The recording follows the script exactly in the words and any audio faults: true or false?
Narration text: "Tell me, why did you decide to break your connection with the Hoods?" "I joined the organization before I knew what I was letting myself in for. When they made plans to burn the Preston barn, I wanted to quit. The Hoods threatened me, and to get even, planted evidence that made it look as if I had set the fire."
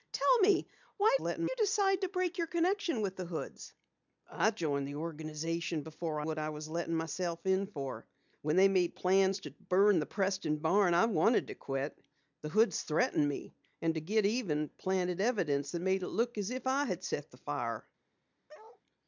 false